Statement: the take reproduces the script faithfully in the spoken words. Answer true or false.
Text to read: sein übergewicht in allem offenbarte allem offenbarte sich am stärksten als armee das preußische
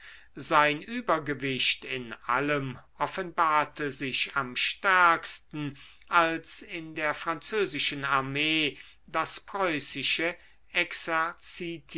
false